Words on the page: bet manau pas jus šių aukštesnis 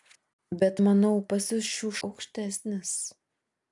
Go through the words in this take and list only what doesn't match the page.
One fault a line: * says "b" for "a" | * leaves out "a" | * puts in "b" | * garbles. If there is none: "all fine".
all fine